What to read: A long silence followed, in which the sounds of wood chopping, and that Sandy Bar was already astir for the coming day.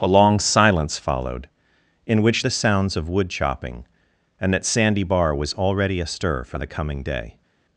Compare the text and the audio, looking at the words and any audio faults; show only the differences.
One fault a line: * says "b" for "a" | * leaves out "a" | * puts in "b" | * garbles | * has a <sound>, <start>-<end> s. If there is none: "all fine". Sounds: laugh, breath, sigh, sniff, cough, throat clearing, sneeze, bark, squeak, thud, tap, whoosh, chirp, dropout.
all fine